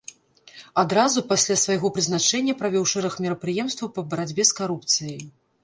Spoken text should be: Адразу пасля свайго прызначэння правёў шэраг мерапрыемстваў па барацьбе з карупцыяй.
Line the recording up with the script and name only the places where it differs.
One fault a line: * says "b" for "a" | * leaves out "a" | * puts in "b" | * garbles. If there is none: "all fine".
all fine